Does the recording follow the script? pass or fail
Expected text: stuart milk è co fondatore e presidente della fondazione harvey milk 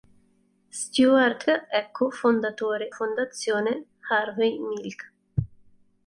fail